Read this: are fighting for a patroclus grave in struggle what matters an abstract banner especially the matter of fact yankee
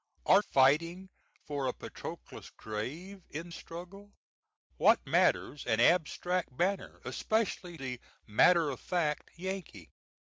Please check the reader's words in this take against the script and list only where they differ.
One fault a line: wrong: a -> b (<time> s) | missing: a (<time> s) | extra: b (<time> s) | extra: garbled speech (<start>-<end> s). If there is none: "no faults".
no faults